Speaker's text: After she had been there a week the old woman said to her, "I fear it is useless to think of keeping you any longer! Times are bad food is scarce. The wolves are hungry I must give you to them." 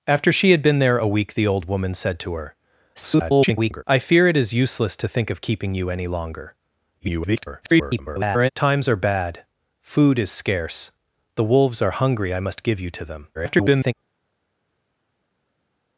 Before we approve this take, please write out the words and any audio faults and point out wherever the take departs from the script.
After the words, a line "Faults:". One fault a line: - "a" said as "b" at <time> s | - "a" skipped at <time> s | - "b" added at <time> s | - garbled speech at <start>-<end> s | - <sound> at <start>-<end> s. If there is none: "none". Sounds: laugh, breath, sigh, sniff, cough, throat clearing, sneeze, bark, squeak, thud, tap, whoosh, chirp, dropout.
After she had been there a week the old woman said to her, [garbled] "I fear it is useless to think of keeping you any longer! [garbled] Times are bad food is scarce. The wolves are hungry I must give you to them." [garbled]
Faults:
- garbled speech at 2.9-3.8 s
- garbled speech at 7.0-8.5 s
- garbled speech at 13.3-13.9 s